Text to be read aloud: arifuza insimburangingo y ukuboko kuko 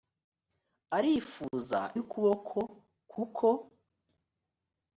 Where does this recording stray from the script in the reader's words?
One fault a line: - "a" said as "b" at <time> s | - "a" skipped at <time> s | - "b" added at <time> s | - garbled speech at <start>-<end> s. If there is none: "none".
- "insimburangingo" skipped at 1.8 s